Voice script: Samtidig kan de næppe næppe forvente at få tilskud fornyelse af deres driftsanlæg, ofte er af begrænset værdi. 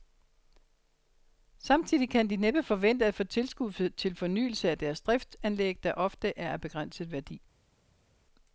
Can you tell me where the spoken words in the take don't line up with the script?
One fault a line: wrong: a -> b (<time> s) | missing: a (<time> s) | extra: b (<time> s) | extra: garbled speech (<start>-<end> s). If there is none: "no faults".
missing: næppe (2.6 s)
extra: til (3.9 s)
extra: der (5.8 s)